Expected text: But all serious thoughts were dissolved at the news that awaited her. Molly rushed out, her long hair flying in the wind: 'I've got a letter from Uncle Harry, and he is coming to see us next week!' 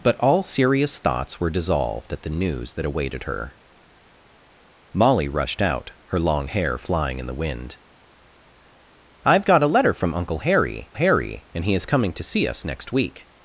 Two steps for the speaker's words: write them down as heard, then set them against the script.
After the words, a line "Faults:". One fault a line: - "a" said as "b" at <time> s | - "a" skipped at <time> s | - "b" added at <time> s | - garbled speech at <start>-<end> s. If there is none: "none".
But all serious thoughts were dissolved at the news that awaited her. Molly rushed out, her long hair flying in the wind: 'I've got a letter from Uncle Harry Harry, and he is coming to see us next week!'
Faults:
- "Harry" added at 10.9 s